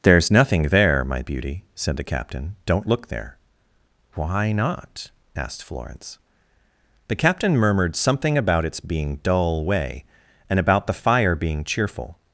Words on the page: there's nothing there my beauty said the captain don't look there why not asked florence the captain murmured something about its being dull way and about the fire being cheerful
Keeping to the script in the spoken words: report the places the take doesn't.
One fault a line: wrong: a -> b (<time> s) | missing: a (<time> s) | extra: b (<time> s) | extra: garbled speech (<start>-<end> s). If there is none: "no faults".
no faults